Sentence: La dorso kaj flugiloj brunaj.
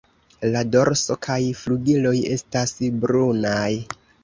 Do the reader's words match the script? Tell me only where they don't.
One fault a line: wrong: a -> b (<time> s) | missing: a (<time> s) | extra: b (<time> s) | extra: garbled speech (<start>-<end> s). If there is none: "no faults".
extra: estas (2.4 s)